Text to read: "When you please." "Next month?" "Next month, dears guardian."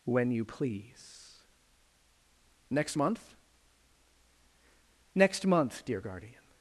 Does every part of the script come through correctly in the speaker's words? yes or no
no